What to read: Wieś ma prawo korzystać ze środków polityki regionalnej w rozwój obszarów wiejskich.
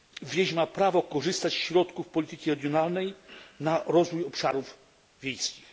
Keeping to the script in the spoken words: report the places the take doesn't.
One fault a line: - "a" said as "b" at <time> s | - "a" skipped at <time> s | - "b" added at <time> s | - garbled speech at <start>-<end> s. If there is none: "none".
- "w" said as "na" at 3.6 s